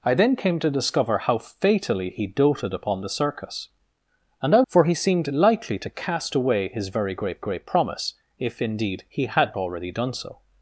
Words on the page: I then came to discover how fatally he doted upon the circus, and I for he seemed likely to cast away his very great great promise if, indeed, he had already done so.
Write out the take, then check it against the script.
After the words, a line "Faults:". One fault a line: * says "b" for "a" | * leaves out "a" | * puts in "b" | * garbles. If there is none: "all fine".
I then came to discover how fatally he doted upon the circus, and I for he seemed likely to cast away his very great great promise if, indeed, he had already done so.
Faults:
all fine